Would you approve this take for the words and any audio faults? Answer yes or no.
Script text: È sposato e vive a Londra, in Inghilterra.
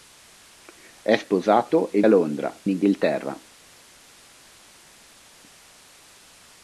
no